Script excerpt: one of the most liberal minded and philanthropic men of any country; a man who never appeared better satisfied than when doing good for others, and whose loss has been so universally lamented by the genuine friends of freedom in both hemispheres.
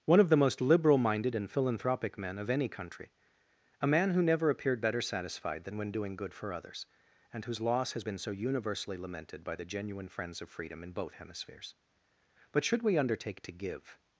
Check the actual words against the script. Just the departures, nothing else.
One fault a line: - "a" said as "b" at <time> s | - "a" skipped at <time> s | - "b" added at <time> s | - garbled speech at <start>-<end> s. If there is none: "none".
- "But should we undertake to give" added at 12.5 s